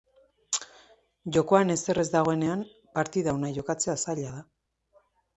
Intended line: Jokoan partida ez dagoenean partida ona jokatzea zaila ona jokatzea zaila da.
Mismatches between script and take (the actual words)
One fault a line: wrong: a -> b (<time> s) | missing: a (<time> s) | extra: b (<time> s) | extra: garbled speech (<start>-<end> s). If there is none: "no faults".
wrong: partida -> ezer (1.7 s)
missing: ona jokatzea zaila (4.3 s)